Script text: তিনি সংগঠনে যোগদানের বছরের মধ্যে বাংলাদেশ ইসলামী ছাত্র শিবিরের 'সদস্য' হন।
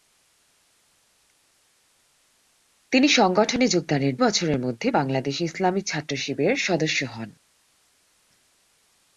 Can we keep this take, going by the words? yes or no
yes